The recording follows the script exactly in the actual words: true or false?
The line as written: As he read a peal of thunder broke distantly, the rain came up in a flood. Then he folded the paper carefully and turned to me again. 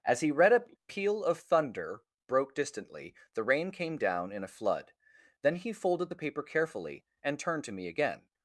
false